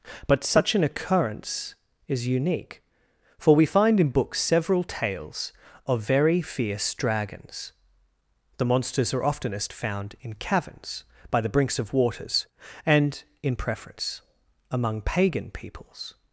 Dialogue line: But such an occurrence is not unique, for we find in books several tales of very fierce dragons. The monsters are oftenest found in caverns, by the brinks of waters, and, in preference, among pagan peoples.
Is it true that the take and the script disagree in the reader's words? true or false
true